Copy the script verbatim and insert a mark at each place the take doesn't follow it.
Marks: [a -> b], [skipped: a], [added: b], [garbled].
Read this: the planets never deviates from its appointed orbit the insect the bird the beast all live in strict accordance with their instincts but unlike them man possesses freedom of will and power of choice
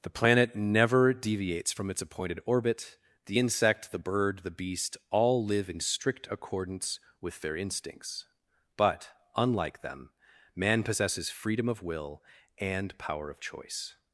the [planets -> planet] never deviates from its appointed orbit the insect the bird the beast all live in strict accordance with their instincts but unlike them man possesses freedom of will and power of choice